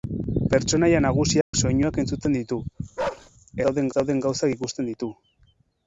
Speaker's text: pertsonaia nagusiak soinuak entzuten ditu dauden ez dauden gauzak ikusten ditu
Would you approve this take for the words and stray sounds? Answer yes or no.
no